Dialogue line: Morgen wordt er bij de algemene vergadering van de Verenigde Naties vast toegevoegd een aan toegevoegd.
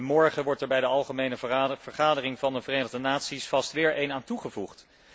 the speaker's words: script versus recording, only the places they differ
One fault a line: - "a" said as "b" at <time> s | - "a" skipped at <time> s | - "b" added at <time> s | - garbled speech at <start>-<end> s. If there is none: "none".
- "toegevoegd" said as "weer" at 3.7 s